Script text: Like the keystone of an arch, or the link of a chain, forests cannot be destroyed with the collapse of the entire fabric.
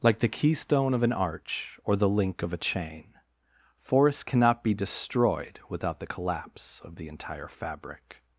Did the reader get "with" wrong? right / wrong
wrong